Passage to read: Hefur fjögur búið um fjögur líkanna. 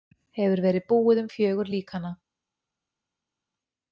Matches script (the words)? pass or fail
fail